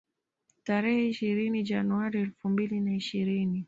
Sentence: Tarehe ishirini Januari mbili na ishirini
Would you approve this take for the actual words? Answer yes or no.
no